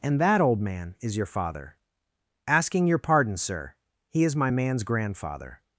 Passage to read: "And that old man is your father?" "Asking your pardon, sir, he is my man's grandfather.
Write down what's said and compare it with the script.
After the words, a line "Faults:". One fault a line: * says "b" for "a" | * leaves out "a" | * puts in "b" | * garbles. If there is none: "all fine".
"And that old man is your father?" "Asking your pardon, sir, he is my man's grandfather.
Faults:
all fine